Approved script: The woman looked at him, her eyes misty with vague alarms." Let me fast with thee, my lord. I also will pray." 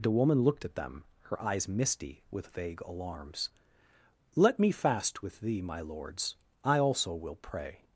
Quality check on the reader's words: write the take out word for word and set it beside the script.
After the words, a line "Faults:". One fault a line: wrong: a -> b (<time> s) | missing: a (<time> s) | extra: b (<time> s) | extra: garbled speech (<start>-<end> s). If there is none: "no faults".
The woman looked at them, her eyes misty with vague alarms." Let me fast with thee, my lords. I also will pray."
Faults:
wrong: him -> them (0.7 s)
wrong: lord -> lords (5.8 s)